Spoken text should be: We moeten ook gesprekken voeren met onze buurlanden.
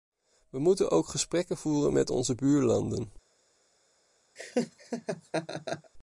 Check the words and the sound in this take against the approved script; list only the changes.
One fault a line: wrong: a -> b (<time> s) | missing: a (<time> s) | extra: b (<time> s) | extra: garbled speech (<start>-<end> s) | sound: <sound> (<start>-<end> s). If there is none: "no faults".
sound: laugh (4.4-5.9 s)